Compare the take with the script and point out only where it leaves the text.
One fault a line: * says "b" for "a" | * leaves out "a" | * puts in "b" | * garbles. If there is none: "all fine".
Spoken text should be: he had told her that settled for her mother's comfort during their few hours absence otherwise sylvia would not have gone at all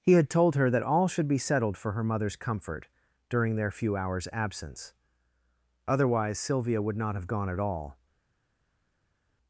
* puts in "all should be"